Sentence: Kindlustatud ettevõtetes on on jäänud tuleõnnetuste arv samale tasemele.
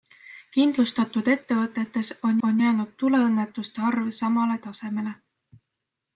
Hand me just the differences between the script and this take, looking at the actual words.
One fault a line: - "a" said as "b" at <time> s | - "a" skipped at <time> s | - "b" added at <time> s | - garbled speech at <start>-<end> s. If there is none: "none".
none